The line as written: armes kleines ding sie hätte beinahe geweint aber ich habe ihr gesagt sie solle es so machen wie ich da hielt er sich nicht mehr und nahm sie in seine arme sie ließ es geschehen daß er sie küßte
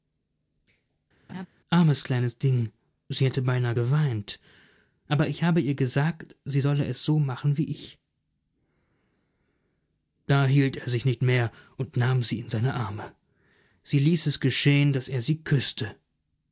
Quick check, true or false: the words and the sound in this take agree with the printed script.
false